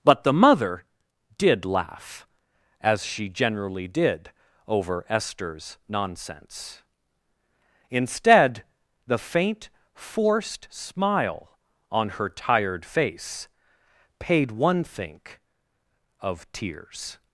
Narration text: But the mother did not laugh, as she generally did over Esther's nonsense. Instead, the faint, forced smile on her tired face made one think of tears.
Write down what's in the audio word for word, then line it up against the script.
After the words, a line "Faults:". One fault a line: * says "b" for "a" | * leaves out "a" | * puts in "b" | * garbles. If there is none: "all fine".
But the mother did laugh, as she generally did over Esther's nonsense. Instead, the faint, forced smile on her tired face paid one think of tears.
Faults:
* leaves out "not"
* says "paid" for "made"